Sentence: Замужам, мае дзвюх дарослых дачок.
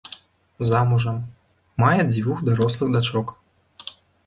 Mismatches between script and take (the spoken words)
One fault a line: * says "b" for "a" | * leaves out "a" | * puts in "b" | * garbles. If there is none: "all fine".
all fine